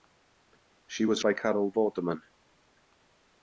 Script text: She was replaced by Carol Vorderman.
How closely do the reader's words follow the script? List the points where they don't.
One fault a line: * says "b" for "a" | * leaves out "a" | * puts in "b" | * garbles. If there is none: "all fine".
* leaves out "replaced"